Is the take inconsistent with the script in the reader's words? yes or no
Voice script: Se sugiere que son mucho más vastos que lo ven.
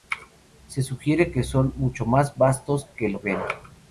no